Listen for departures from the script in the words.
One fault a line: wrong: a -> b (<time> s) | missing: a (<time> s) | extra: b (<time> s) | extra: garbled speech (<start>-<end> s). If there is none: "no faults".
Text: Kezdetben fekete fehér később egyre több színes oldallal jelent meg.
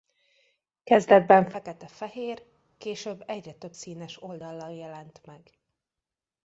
no faults